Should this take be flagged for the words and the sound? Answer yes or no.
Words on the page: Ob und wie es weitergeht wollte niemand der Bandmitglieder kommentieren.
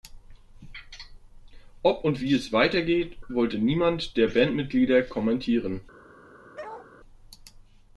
yes